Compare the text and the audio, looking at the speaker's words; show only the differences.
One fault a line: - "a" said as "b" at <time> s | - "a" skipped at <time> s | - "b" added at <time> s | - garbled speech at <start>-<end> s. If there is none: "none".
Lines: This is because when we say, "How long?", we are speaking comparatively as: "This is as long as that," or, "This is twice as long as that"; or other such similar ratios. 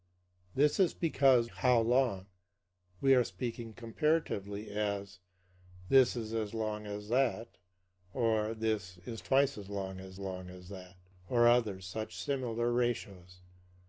- "when we say" skipped at 1.5 s
- "long as" added at 10.2 s